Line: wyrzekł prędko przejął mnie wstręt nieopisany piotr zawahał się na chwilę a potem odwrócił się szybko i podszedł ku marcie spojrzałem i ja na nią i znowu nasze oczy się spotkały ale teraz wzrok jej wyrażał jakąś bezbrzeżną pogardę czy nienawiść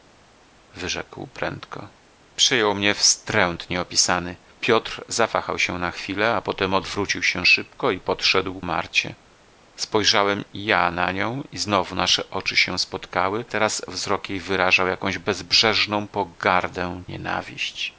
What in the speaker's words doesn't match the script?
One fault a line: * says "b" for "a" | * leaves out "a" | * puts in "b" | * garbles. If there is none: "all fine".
* leaves out "ku"
* leaves out "ale"
* leaves out "czy"